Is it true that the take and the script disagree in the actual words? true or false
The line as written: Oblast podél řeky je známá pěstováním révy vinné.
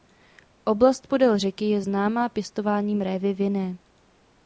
false